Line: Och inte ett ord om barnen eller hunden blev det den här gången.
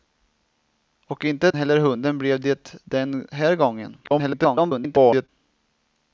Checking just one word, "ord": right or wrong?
wrong